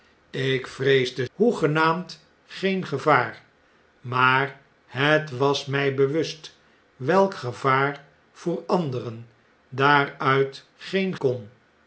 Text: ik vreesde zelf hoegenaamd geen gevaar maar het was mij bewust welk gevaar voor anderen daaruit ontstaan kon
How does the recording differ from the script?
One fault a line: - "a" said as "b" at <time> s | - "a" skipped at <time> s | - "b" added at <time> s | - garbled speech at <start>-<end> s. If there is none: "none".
- "zelf" skipped at 1.3 s
- "ontstaan" said as "geen" at 10.8 s